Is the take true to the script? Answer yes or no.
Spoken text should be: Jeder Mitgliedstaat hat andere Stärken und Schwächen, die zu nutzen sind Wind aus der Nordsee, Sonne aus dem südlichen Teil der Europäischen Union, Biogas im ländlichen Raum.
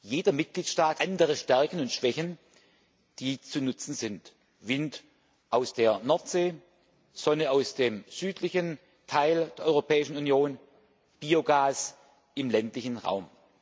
no